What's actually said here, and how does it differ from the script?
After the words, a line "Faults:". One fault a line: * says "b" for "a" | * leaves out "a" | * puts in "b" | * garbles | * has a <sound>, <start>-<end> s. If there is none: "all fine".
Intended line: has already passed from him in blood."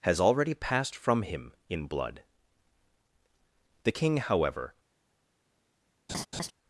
has already passed from him in blood." The king, however
Faults:
* puts in "The king however"
* has a laugh, 6.1-6.5 s